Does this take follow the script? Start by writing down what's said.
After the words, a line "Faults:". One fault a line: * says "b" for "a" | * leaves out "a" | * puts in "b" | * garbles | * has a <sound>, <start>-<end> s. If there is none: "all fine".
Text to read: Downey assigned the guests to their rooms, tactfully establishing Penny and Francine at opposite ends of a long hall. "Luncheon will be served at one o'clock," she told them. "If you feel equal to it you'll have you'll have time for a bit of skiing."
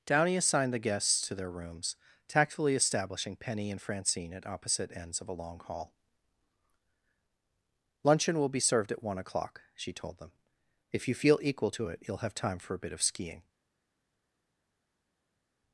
Downey assigned the guests to their rooms, tactfully establishing Penny and Francine at opposite ends of a long hall. "Luncheon will be served at one o'clock," she told them. "If you feel equal to it you'll have time for a bit of skiing."
Faults:
* leaves out "you'll have"